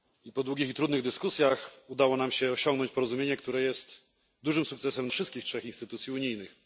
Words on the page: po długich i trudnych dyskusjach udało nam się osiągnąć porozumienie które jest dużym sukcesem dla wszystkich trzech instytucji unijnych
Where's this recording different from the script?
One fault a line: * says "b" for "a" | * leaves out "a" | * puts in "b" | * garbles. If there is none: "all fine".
* leaves out "dla"